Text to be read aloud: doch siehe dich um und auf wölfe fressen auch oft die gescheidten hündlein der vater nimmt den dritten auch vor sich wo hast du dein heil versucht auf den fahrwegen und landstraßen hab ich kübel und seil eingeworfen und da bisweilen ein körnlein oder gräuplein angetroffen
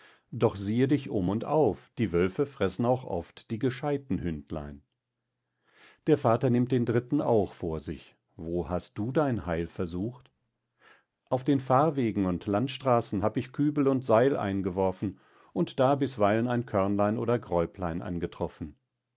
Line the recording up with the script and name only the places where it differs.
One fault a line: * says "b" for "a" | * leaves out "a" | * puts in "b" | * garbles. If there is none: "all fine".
* puts in "die"